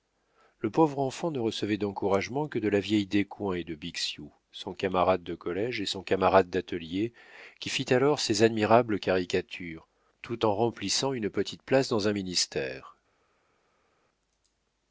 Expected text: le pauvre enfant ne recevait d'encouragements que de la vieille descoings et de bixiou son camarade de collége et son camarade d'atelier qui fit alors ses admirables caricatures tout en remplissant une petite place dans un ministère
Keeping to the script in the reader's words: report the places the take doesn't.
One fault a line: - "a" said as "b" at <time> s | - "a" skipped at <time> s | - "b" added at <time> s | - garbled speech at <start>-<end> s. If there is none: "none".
none